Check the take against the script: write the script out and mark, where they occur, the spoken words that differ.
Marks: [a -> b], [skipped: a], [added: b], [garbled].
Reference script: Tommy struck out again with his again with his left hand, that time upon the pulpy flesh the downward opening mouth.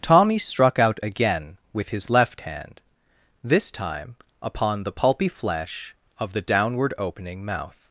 Tommy struck out again with his [skipped: again with his] left hand, [that -> this] time upon the pulpy flesh [added: of] the downward opening mouth.